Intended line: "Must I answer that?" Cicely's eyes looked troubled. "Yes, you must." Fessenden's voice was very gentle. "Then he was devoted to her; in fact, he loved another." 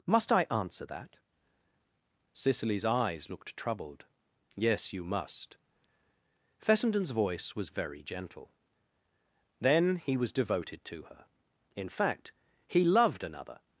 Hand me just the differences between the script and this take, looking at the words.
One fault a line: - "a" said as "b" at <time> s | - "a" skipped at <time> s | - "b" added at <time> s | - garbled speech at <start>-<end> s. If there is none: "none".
none